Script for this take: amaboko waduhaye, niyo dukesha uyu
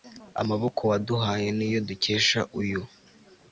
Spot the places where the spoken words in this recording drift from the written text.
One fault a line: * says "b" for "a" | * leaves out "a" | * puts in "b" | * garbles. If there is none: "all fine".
all fine